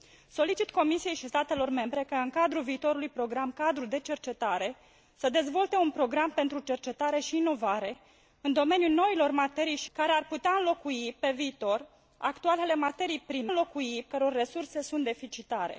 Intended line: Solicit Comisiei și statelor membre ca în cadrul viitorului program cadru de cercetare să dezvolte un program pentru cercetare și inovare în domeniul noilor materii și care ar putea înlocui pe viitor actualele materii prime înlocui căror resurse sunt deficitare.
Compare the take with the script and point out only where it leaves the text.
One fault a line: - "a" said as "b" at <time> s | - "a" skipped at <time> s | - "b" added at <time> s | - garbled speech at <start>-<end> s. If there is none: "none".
none